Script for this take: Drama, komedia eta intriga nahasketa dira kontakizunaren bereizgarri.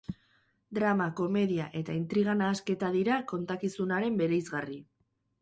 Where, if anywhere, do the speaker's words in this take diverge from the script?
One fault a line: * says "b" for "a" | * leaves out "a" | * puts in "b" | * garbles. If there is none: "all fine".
all fine